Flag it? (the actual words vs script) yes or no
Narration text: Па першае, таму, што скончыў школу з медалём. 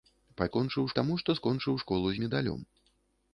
yes